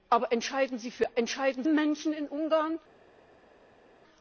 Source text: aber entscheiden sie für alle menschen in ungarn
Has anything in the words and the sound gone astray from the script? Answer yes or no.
yes